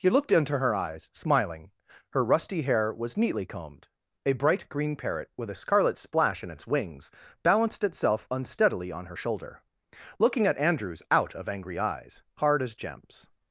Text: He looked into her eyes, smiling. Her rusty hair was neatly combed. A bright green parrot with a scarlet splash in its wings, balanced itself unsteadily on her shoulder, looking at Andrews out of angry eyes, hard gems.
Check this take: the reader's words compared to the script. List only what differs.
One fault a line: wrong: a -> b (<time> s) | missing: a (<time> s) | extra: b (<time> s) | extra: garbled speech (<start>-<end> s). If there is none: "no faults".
extra: as (12.6 s)